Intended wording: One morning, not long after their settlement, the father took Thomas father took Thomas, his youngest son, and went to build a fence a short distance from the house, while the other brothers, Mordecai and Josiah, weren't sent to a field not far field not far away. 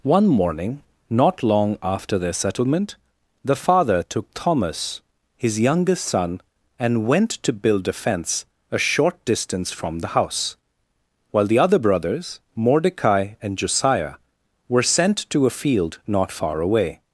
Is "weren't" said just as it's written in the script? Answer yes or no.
no